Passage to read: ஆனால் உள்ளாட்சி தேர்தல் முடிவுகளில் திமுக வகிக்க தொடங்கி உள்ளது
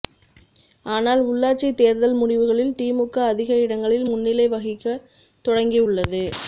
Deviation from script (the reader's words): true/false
true